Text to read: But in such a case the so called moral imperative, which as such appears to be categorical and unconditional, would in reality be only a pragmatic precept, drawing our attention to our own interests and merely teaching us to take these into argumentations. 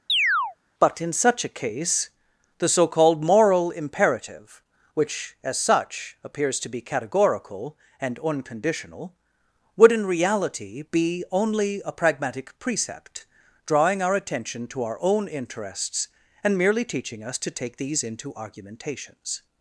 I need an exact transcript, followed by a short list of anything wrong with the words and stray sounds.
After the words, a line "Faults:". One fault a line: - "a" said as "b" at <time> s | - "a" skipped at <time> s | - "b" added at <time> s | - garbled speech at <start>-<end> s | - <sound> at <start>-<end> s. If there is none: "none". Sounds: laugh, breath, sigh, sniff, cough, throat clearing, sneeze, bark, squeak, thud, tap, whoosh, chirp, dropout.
But in such a case the so called moral imperative, which as such appears to be categorical and unconditional, would in reality be only a pragmatic precept, drawing our attention to our own interests and merely teaching us to take these into argumentations.
Faults:
- chirp at 0.1-0.6 s